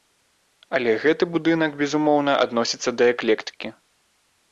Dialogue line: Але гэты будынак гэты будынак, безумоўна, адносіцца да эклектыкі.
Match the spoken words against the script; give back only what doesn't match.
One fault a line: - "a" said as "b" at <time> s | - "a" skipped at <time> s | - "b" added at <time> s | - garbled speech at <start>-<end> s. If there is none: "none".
- "гэты будынак" skipped at 1.8 s